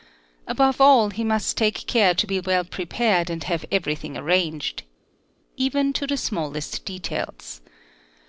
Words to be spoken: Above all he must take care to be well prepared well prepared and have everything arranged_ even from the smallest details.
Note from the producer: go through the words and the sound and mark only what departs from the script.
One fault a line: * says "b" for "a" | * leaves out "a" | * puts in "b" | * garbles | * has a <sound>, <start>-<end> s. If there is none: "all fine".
* leaves out "well prepared"
* says "to" for "from"